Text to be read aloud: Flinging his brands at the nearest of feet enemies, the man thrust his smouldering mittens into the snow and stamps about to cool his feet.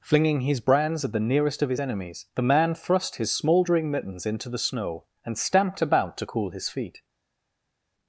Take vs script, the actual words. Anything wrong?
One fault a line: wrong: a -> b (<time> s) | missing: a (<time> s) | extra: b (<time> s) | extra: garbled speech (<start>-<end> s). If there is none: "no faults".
wrong: feet -> his (1.7 s)
wrong: stamps -> stamped (5.4 s)